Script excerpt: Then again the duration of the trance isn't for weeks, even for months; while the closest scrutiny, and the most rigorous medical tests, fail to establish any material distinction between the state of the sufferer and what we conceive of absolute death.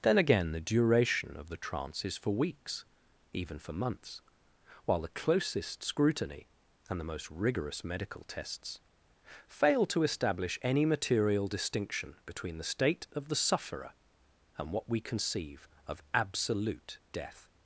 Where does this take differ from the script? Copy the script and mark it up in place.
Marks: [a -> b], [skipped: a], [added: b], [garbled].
Then again the duration of the trance [isn't -> is] for weeks, even for months; while the closest scrutiny, and the most rigorous medical tests, fail to establish any material distinction between the state of the sufferer and what we conceive of absolute death.